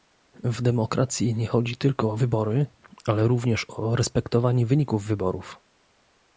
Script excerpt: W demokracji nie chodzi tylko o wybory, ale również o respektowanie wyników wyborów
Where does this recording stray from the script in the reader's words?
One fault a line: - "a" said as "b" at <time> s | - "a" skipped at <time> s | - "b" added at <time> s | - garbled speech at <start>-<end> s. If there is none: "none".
none